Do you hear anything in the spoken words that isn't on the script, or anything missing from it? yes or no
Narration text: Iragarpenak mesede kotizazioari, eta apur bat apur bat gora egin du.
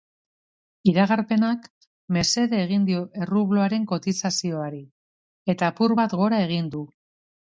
yes